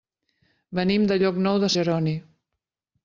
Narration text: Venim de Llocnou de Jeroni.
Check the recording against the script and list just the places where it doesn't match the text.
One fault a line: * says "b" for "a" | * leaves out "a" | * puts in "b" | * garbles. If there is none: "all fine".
all fine